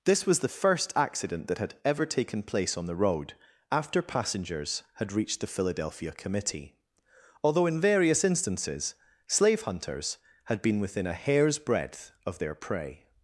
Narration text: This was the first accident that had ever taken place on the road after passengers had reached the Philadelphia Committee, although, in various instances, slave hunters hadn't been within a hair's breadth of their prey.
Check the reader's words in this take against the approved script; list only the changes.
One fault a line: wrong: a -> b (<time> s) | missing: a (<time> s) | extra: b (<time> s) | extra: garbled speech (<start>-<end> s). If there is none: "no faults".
wrong: hadn't -> had (10.4 s)